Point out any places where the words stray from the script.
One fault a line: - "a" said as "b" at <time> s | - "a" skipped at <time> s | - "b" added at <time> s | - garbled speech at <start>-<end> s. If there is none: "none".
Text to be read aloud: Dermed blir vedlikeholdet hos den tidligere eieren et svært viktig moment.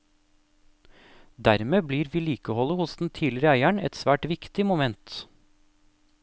none